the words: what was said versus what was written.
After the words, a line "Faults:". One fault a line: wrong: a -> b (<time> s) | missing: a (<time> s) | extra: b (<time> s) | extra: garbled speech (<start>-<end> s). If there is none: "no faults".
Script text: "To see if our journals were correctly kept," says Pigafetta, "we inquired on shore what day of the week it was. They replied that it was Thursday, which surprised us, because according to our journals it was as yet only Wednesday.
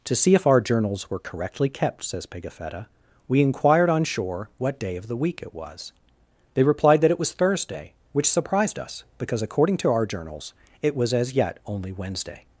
"To see if our journals were correctly kept," says Pigafetta, "we inquired on shore what day of the week it was. They replied that it was Thursday, which surprised us, because according to our journals it was as yet only Wednesday.
Faults:
no faults